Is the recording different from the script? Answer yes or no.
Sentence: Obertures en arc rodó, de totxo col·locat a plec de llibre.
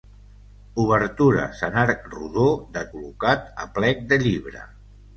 yes